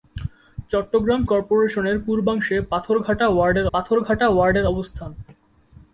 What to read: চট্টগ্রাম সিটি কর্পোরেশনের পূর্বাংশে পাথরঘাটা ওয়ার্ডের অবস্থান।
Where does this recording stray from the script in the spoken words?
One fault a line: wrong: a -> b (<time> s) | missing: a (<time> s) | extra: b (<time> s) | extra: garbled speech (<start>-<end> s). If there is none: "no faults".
missing: সিটি (1.2 s)
extra: পাথরঘাটা ওয়ার্ডের (3.7 s)